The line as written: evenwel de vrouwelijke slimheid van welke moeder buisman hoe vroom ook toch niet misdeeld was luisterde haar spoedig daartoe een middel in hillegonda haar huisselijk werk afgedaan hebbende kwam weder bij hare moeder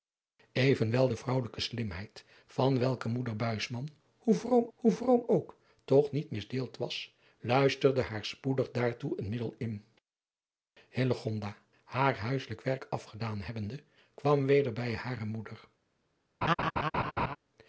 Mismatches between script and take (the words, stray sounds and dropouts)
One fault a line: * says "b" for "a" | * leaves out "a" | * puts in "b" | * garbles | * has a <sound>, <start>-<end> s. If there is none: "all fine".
* puts in "hoe vroom"
* has a laugh, 16.4-17.4 s